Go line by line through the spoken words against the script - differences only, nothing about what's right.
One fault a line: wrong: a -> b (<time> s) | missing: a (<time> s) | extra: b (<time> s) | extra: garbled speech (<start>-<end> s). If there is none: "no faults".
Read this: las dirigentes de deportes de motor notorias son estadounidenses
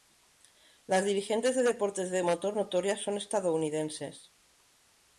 no faults